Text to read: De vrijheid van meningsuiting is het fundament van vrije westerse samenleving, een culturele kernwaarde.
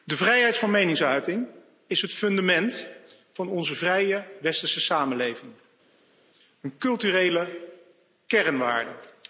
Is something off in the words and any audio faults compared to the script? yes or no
yes